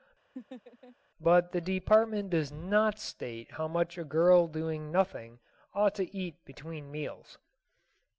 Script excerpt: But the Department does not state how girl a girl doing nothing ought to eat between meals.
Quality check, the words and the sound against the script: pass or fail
fail